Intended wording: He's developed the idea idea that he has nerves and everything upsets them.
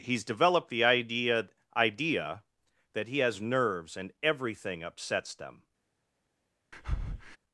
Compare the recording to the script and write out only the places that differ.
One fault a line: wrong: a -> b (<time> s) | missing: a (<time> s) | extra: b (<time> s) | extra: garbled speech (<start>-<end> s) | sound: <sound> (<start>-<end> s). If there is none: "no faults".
sound: breath (6.7-7.4 s)